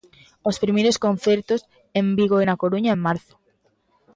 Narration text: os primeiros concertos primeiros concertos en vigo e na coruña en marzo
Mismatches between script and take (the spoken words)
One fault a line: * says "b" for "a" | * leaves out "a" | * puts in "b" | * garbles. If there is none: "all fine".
* leaves out "primeiros concertos"